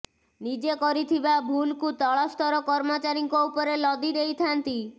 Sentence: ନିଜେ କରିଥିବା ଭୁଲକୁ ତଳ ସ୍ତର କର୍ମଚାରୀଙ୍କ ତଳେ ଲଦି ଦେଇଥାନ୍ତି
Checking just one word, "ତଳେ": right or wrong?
wrong